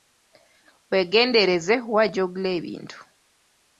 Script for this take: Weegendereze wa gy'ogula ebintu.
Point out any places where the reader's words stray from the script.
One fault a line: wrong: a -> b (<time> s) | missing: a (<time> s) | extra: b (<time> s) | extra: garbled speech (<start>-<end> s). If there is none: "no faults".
no faults